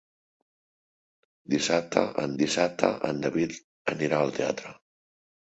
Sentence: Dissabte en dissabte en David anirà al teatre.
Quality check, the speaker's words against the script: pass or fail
pass